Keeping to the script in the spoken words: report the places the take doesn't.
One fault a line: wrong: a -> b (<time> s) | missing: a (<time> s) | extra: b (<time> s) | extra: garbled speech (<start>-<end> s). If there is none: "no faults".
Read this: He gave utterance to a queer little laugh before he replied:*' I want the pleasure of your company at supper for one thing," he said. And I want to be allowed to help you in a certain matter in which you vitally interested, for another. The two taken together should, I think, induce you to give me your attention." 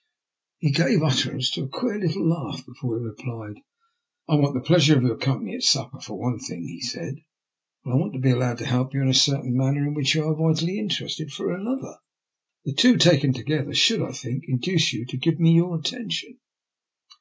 extra: are (10.2 s)